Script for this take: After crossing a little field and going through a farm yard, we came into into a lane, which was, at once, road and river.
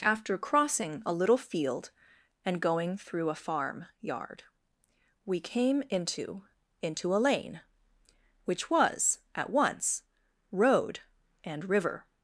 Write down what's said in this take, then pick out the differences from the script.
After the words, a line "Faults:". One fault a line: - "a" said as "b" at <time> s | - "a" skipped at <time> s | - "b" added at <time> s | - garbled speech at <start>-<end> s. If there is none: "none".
After crossing a little field and going through a farm yard, we came into into a lane, which was, at once, road and river.
Faults:
none